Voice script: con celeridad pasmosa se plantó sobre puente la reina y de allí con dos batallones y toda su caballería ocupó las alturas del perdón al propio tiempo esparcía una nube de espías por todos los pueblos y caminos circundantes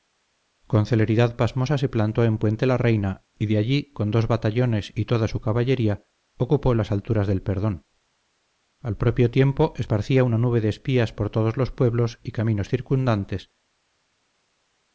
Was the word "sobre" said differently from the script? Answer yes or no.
yes